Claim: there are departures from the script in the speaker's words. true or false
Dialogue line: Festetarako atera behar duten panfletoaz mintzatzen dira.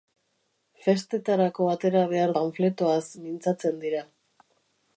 true